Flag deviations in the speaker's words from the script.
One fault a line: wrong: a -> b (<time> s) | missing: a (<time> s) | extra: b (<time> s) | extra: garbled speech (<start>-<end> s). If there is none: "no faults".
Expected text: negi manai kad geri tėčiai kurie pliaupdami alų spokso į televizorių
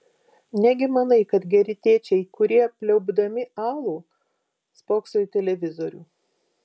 no faults